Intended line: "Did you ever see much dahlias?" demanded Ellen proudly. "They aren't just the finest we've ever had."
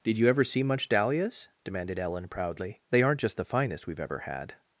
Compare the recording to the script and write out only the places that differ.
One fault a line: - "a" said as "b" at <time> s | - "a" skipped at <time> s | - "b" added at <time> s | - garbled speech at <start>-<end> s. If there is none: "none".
none